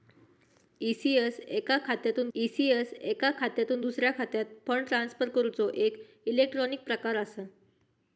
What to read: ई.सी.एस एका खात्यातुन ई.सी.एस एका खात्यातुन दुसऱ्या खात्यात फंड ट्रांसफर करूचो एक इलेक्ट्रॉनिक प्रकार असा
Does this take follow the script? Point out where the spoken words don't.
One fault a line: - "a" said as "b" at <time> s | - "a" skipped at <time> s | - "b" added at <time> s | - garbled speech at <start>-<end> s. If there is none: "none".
none